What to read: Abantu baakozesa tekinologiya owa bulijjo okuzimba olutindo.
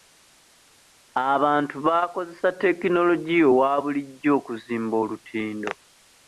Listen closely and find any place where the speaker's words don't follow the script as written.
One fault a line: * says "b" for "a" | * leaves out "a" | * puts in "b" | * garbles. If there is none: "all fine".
all fine